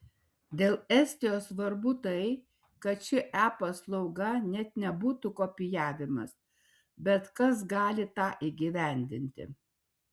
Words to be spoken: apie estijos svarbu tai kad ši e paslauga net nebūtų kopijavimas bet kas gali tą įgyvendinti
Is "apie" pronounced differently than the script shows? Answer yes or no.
yes